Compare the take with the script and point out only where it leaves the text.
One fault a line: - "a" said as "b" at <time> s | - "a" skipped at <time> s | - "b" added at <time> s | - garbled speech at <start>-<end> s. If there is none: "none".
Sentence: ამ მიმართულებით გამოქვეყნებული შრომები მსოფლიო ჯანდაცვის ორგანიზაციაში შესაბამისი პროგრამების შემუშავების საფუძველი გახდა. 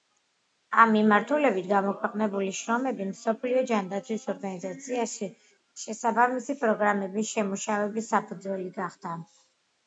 none